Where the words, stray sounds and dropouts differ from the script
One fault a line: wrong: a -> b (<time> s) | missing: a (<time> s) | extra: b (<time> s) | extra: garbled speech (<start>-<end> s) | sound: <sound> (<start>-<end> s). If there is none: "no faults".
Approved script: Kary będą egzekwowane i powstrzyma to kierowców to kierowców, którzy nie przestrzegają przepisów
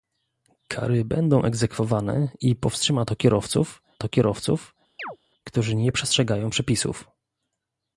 sound: chirp (5.0-5.2 s)